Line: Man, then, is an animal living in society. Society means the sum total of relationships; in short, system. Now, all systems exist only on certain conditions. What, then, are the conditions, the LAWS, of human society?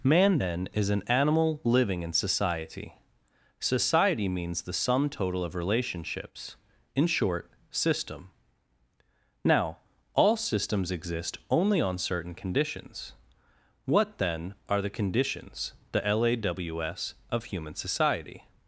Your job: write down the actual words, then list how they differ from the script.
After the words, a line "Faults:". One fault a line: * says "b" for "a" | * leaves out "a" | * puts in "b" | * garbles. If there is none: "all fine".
Man, then, is an animal living in society. Society means the sum total of relationships; in short, system. Now, all systems exist only on certain conditions. What, then, are the conditions, the LAWS, of human society?
Faults:
all fine